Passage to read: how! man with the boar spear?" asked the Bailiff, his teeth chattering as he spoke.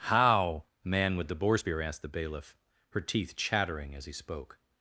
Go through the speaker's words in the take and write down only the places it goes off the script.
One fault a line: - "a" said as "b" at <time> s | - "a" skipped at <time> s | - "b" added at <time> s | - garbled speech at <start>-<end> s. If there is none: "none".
- "his" said as "her" at 2.9 s